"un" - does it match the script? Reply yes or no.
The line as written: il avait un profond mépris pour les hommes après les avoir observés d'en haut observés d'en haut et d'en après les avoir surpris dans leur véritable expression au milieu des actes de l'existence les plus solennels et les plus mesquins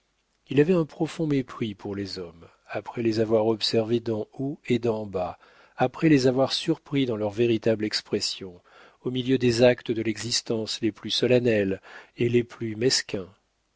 yes